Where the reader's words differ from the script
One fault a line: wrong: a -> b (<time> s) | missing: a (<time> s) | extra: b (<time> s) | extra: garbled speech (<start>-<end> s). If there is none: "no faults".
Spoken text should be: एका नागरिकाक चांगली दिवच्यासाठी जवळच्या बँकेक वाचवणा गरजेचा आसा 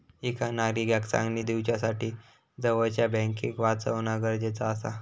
no faults